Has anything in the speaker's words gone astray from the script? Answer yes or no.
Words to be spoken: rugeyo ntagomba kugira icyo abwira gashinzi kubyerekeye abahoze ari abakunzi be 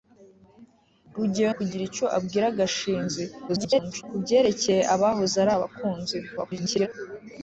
yes